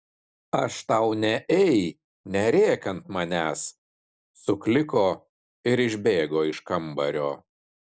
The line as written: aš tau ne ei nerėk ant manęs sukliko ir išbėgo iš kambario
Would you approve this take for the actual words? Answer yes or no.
yes